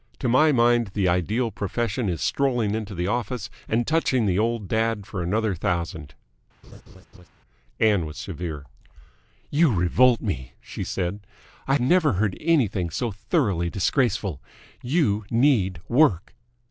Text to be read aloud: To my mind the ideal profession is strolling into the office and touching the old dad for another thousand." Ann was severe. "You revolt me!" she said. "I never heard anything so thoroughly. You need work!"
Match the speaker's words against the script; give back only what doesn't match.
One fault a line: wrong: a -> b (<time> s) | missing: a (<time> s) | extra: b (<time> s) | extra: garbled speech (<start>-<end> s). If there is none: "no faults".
extra: disgraceful (13.7 s)